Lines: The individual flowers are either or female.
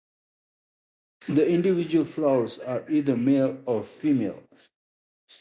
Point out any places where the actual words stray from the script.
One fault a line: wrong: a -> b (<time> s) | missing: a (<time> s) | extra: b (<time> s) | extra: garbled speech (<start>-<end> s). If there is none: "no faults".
extra: male (3.2 s)